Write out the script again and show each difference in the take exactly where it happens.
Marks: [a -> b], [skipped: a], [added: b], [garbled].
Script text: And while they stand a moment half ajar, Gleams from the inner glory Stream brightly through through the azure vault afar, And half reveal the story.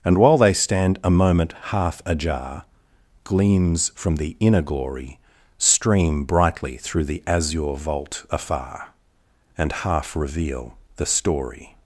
And while they stand a moment half ajar, Gleams from the inner glory Stream brightly through [skipped: through] the azure vault afar, And half reveal the story.